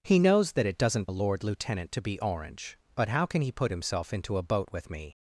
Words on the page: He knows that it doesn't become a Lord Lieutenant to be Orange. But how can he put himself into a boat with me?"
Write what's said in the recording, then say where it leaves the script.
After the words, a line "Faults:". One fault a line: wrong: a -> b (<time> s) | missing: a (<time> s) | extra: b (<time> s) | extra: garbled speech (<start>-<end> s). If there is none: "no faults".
He knows that it doesn't a Lord Lieutenant to be Orange. But how can he put himself into a boat with me?"
Faults:
missing: become (1.1 s)